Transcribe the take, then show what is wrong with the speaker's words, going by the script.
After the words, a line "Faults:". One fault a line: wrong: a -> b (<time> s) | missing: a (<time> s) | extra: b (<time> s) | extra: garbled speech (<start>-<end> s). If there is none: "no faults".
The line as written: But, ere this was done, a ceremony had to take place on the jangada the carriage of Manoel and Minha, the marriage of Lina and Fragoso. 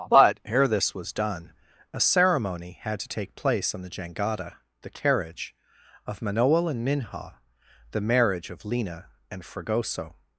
But, ere this was done, a ceremony had to take place on the jangada the carriage of Manoel and Minha, the marriage of Lina and Fragoso.
Faults:
no faults